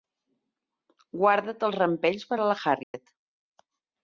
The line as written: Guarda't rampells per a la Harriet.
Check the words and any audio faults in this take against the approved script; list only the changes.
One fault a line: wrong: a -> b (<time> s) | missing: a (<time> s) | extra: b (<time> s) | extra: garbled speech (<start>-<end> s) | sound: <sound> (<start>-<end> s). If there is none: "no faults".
extra: els (1.7 s)
sound: dropout (2.8-2.9 s)